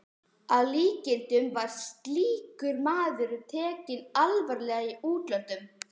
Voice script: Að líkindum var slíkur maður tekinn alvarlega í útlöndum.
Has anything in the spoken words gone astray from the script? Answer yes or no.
no